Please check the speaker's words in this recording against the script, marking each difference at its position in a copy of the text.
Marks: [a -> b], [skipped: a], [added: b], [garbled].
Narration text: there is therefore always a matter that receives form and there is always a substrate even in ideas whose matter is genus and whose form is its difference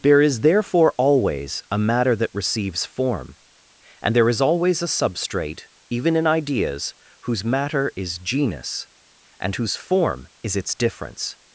there is therefore always a matter that receives form and there is always a substrate even in ideas whose matter is genus and whose form is its difference